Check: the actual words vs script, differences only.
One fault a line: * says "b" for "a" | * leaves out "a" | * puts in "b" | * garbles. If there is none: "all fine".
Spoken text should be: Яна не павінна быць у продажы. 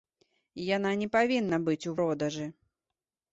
all fine